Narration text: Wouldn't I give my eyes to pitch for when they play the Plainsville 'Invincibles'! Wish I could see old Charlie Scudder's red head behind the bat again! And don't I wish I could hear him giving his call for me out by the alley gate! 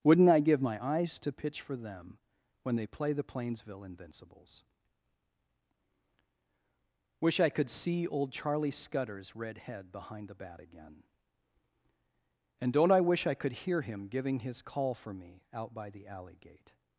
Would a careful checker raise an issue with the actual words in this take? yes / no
yes